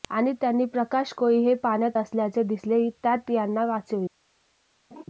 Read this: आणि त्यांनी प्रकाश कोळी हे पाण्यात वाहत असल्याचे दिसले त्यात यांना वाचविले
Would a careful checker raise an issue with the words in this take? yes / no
yes